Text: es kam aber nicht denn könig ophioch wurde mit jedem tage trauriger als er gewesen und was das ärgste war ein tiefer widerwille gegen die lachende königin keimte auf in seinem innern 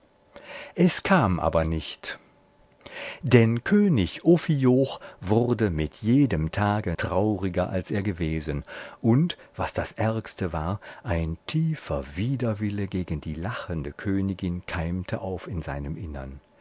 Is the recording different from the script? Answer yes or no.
no